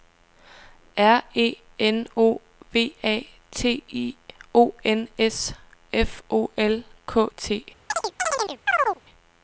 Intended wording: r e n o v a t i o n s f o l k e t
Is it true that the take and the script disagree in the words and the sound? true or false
true